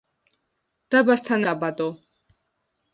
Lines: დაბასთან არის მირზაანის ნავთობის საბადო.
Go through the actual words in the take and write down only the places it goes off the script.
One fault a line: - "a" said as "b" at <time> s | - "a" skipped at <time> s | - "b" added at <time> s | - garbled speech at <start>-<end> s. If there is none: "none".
- "არის მირზაანის ნავთობის" skipped at 1.4 s